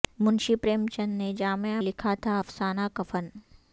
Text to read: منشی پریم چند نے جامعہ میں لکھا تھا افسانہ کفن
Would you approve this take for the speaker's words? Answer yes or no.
no